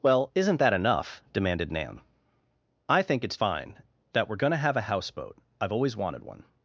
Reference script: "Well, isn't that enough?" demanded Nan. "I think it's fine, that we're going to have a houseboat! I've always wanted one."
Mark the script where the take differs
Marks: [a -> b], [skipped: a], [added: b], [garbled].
"Well, isn't that enough?" demanded Nan. "I think it's fine, that we're going to have a houseboat! I've always wanted one."